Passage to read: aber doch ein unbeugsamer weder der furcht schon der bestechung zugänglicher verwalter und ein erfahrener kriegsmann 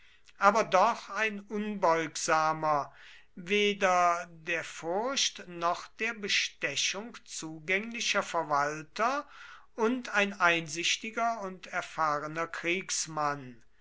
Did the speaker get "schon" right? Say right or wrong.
wrong